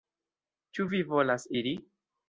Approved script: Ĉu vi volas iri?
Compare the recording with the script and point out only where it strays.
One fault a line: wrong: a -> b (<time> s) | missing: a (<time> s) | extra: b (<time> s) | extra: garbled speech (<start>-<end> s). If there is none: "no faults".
no faults